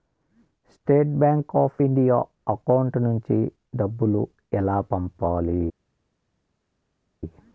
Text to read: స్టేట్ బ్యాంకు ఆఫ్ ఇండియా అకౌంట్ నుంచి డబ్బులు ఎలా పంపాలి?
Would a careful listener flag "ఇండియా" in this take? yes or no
no